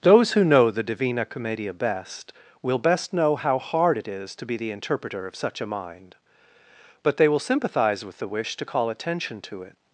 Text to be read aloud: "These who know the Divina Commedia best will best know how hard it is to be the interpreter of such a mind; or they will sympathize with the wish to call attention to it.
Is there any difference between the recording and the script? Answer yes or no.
yes